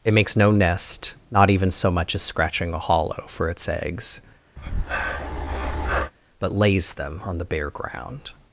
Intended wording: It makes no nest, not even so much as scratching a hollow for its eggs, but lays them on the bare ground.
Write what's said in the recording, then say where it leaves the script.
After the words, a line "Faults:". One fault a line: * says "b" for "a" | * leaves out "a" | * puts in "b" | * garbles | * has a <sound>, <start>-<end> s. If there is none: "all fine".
It makes no nest, not even so much as scratching a hollow for its eggs, but lays them on the bare ground.
Faults:
* has a breath, 4.6-6.1 s